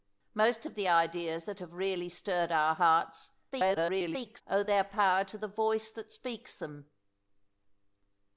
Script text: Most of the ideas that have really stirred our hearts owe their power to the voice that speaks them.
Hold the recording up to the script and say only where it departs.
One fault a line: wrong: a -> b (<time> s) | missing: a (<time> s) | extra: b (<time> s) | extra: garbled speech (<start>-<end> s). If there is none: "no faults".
extra: garbled speech (3.5-4.4 s)